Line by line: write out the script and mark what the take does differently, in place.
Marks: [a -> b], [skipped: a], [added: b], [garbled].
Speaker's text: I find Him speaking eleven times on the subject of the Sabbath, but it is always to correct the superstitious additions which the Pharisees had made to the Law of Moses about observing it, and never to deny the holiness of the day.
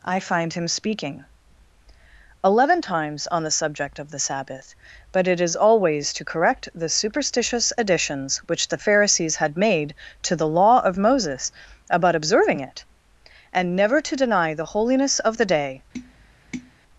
I find Him speaking eleven times on the subject of the Sabbath, but it is always to correct the superstitious additions which the Pharisees had made to the Law of Moses about observing it, and never to deny the holiness of the day.